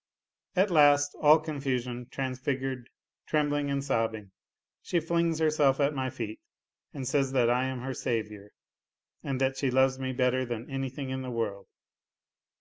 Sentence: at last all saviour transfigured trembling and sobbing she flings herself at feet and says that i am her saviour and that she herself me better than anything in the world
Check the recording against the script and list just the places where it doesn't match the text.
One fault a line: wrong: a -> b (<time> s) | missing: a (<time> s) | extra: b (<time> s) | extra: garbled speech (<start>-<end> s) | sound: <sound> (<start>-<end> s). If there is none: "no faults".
wrong: saviour -> confusion (1.4 s)
extra: my (5.9 s)
wrong: herself -> loves (9.7 s)